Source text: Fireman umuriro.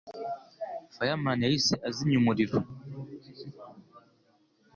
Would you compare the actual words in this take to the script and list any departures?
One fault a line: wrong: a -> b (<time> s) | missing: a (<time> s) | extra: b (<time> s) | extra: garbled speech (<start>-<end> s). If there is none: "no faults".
extra: yahise azimya (1.4 s)